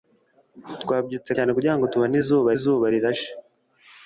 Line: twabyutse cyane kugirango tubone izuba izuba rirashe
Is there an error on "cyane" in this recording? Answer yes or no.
no